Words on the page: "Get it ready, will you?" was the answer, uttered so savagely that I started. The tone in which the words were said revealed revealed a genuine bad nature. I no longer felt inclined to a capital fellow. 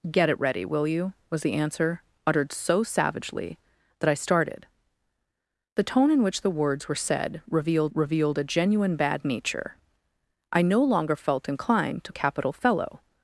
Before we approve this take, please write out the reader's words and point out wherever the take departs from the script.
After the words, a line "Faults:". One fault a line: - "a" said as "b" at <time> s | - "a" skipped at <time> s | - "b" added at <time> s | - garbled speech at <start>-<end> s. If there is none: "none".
"Get it ready, will you?" was the answer, uttered so savagely that I started. The tone in which the words were said revealed revealed a genuine bad nature. I no longer felt inclined to a capital fellow.
Faults:
none